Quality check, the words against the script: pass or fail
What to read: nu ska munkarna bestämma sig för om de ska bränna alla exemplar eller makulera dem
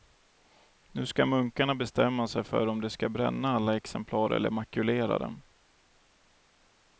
pass